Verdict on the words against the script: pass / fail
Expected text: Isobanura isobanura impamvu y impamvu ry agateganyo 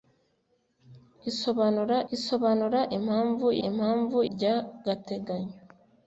pass